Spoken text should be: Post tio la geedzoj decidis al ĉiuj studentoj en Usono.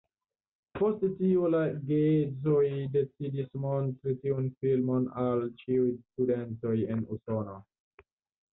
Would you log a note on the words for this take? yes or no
yes